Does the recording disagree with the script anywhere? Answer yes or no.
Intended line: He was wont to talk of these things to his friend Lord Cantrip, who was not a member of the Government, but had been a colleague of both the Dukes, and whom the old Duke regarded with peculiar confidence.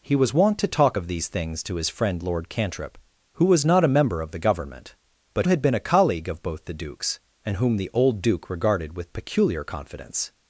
no